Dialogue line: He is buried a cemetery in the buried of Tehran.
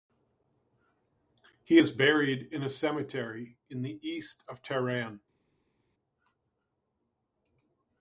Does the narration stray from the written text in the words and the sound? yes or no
yes